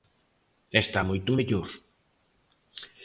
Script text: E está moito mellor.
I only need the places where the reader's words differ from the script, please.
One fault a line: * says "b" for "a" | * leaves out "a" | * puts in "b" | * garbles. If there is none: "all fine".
all fine